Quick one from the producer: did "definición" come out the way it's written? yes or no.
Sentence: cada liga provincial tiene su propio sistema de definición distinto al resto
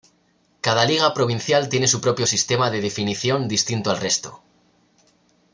yes